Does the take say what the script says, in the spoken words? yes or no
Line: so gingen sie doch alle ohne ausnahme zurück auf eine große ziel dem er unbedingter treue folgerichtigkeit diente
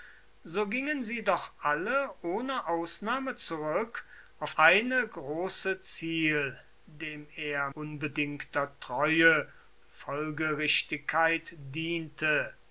yes